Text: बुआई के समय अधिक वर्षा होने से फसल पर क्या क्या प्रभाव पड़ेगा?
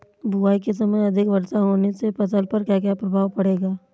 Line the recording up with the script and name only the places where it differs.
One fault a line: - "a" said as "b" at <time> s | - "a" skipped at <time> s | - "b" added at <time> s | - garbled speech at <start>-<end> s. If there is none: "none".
none